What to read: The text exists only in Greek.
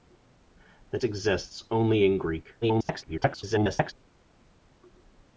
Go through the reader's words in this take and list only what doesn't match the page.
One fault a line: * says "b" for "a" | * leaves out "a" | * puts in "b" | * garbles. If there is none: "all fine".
* leaves out "text"
* garbles